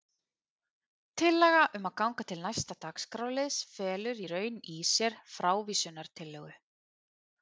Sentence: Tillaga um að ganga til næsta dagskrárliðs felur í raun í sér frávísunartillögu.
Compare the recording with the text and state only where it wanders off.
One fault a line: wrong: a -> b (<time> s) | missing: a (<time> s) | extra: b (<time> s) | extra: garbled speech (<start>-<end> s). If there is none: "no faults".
no faults